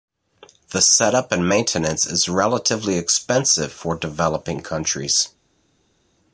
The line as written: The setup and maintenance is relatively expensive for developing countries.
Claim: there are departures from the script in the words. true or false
false